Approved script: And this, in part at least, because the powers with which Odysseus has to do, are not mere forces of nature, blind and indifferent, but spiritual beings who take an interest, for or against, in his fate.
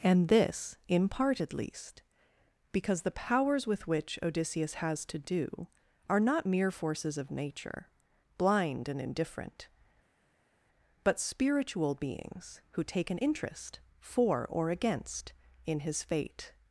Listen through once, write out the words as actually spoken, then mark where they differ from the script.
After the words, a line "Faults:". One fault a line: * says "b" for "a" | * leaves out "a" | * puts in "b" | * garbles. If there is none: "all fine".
And this, in part at least, because the powers with which Odysseus has to do, are not mere forces of nature, blind and indifferent, but spiritual beings who take an interest, for or against, in his fate.
Faults:
all fine